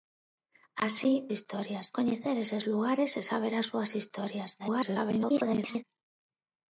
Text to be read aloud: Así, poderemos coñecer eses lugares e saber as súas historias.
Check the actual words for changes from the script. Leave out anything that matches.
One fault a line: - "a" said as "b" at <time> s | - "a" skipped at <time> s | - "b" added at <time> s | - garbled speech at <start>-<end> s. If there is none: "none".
- "poderemos" said as "historias" at 1.3 s
- garbled speech at 4.6-5.8 s